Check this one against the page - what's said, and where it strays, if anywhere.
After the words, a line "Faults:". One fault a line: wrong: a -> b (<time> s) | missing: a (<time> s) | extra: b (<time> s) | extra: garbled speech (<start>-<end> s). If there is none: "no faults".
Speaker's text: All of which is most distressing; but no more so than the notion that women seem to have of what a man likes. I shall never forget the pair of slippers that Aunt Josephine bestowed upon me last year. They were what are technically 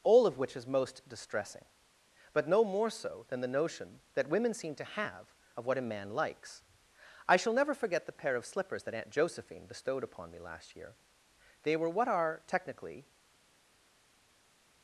All of which is most distressing; but no more so than the notion that women seem to have of what a man likes. I shall never forget the pair of slippers that Aunt Josephine bestowed upon me last year. They were what are technically
Faults:
no faults